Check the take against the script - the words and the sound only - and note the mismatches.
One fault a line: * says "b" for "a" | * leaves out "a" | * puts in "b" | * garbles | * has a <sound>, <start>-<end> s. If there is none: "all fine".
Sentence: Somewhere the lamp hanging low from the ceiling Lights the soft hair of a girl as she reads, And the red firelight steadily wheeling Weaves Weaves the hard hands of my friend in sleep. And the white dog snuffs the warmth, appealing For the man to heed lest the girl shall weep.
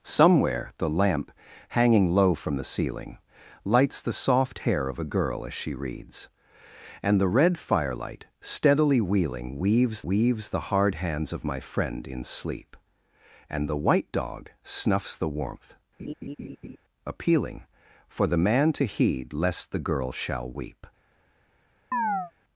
* has a laugh, 16.0-16.8 s
* has a chirp, 21.9-22.3 s